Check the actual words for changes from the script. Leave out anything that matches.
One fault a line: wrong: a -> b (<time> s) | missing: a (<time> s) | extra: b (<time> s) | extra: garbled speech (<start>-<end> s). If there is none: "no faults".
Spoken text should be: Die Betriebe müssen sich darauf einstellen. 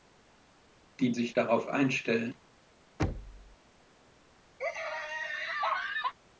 missing: Betriebe müssen (1.1 s)